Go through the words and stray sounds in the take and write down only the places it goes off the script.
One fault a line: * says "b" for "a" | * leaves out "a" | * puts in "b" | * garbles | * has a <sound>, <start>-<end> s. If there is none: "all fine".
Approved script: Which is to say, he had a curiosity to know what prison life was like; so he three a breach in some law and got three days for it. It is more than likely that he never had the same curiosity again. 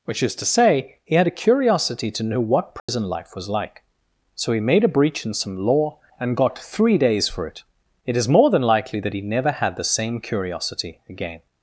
* has a dropout, 2.8-2.9 s
* says "made" for "three"